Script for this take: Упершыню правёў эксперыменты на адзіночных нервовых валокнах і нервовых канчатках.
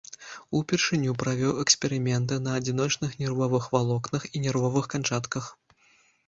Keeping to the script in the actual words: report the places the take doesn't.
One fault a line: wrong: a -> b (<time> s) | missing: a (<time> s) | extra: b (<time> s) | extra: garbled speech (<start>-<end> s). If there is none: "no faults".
no faults